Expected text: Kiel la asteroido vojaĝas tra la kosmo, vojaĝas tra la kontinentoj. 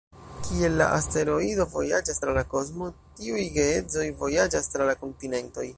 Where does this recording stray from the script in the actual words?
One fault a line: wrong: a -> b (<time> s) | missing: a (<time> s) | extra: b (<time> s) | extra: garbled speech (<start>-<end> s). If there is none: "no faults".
extra: tiuj geedzoj (3.2 s)